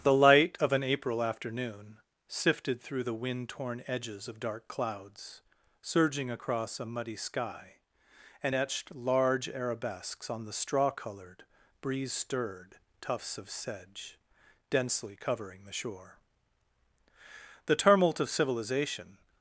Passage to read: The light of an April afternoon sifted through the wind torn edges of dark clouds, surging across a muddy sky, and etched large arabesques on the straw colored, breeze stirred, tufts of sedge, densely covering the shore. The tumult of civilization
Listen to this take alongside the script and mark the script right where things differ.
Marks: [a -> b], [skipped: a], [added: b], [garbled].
The light of an April afternoon sifted through the wind torn edges of dark clouds, surging across a muddy sky, and etched large arabesques on the straw colored, breeze stirred, tufts of sedge, densely covering the shore. The tumult of civilization